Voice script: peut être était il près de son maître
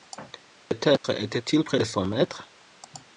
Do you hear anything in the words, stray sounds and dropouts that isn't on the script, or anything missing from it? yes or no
yes